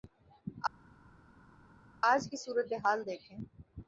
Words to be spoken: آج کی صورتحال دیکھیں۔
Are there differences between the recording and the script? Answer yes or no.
no